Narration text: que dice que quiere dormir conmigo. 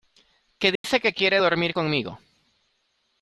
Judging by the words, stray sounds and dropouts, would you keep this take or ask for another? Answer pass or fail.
fail